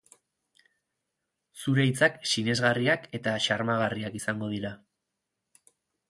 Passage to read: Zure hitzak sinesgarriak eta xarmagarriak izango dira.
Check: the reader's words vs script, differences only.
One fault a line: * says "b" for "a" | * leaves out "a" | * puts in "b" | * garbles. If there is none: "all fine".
all fine